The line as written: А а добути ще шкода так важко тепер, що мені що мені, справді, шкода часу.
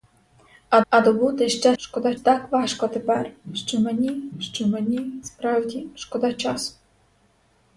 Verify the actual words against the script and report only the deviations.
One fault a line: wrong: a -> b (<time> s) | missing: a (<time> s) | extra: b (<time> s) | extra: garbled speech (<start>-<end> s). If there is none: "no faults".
no faults